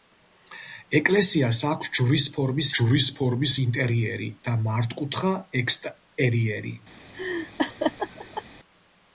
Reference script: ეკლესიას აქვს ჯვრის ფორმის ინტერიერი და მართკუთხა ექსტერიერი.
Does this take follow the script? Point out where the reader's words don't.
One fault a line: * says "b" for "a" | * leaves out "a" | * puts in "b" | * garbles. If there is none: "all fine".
* puts in "ჯვრის ფორმის"